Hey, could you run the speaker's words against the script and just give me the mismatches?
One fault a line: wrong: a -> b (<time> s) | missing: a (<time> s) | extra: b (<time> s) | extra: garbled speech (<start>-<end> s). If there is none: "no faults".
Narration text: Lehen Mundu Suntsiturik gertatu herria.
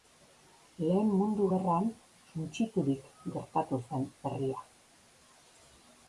extra: Gerran (1.5 s)
extra: zen (3.9 s)